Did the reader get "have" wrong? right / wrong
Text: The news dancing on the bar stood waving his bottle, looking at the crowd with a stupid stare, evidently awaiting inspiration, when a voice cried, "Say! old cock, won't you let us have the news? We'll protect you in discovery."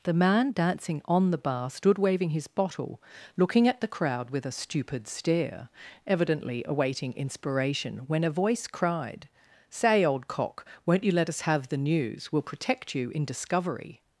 right